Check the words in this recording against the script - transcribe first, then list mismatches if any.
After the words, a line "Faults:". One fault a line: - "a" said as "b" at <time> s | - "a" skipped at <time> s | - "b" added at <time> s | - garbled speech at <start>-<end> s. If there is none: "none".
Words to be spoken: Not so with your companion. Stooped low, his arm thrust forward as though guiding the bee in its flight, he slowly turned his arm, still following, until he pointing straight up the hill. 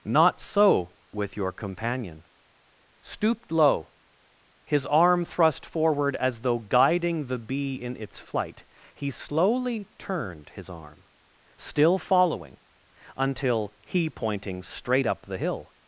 Not so with your companion. Stooped low, his arm thrust forward as though guiding the bee in its flight, he slowly turned his arm, still following, until he pointing straight up the hill.
Faults:
none